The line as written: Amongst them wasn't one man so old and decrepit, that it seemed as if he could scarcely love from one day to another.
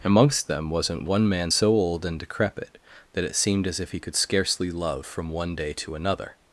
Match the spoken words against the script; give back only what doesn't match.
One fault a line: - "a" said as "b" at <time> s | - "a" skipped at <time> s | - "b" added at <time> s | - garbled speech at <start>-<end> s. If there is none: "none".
none